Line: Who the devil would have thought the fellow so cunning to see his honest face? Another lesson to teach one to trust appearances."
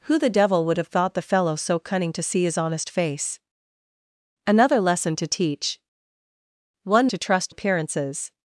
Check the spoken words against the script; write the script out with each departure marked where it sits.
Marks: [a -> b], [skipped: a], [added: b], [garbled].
Who the devil would have thought the fellow so cunning to see his honest face? Another lesson to teach one to trust appearances."